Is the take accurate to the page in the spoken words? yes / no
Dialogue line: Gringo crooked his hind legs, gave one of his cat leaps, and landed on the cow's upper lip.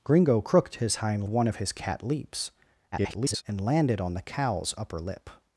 no